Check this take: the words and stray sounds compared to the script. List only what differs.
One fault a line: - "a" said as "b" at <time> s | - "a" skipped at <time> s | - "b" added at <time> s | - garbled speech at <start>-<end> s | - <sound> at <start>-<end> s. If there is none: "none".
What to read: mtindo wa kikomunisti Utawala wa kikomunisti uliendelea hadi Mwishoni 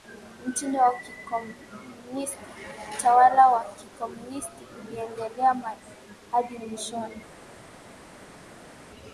none